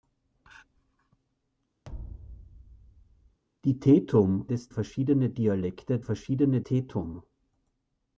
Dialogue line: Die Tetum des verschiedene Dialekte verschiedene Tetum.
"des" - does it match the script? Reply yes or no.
yes